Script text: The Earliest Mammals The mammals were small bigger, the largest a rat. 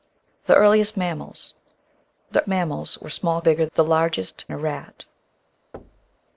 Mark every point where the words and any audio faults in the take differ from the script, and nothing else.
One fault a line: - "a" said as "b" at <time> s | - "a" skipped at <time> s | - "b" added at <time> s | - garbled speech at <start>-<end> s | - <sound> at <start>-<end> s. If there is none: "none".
- thud at 5.7-6.2 s